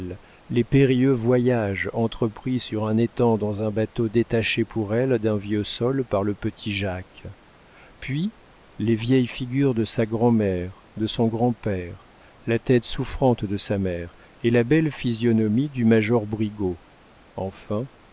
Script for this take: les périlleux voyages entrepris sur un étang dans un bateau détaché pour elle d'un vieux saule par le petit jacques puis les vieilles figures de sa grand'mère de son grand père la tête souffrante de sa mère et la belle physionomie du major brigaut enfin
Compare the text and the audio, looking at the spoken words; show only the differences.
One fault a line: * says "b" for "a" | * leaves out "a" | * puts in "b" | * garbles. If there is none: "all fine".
all fine